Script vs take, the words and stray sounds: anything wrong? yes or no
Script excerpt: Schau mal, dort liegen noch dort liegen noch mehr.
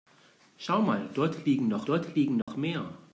yes